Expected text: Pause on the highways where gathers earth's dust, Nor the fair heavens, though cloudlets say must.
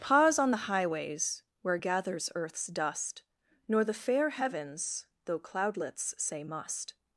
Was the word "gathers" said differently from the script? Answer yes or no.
no